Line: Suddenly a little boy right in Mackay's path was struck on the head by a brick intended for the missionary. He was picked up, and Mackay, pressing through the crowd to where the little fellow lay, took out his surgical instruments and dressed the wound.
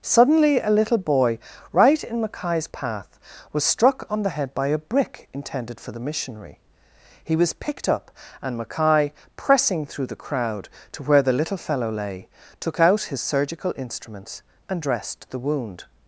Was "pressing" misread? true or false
false